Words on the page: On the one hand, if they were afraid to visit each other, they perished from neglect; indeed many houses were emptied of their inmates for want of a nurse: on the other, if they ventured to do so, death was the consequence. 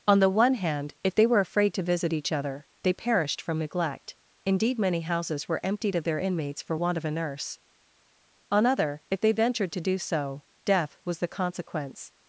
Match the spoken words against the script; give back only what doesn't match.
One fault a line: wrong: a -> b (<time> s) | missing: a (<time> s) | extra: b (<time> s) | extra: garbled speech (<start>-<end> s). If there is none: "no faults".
missing: the (8.7 s)